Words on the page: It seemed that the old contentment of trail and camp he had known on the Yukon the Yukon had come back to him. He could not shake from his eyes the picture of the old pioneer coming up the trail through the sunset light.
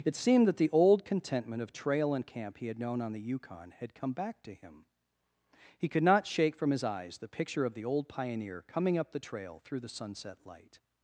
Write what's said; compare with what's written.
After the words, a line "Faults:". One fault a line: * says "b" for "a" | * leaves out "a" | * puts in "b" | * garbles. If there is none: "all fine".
It seemed that the old contentment of trail and camp he had known on the Yukon had come back to him. He could not shake from his eyes the picture of the old pioneer coming up the trail through the sunset light.
Faults:
* leaves out "the Yukon"